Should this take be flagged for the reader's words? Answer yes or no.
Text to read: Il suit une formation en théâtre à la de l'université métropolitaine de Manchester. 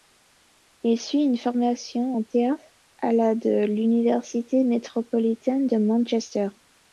no